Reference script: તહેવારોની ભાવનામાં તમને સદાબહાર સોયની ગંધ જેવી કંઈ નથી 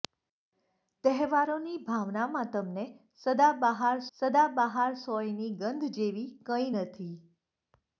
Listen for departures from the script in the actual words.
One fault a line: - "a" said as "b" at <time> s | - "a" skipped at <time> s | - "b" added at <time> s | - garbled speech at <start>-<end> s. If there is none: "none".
- "સદાબહાર" added at 4.2 s